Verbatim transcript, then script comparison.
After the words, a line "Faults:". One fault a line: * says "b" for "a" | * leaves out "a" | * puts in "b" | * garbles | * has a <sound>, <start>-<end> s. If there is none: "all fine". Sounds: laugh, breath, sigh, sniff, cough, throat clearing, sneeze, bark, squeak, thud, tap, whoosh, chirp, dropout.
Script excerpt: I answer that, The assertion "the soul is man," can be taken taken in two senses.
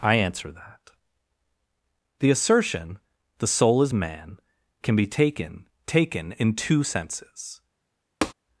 I answer that, The assertion "the soul is man," can be taken taken in two senses.
Faults:
* has a tap, 8.2-8.3 s